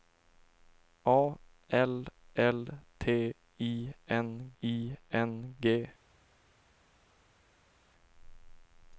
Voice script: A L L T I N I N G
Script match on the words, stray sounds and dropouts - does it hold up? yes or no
yes